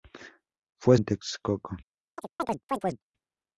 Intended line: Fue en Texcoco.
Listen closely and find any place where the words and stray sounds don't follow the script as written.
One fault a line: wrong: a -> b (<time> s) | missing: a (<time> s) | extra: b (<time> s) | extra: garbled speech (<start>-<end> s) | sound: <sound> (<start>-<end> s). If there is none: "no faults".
sound: chirp (2.2-3.0 s)